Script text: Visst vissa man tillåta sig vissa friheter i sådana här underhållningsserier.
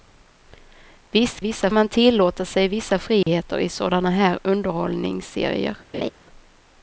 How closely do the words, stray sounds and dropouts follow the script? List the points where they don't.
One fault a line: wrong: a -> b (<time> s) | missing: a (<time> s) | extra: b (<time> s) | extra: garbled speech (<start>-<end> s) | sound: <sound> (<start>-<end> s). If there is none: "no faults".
sound: dropout (3.2-3.3 s)
sound: laugh (5.9-6.1 s)